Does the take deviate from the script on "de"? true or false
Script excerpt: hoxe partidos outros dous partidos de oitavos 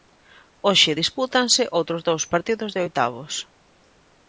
false